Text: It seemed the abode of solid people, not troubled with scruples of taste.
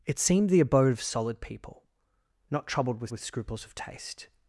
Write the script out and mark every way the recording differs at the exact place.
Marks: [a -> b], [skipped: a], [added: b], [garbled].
It seemed the abode of solid people, not troubled with [added: with] scruples of taste.